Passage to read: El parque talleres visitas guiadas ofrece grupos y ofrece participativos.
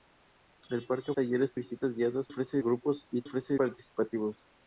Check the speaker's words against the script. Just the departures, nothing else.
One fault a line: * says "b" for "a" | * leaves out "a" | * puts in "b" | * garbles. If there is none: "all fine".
all fine